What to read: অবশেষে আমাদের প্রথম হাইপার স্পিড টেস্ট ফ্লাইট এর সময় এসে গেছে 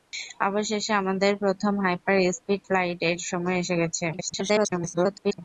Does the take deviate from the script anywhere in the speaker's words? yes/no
yes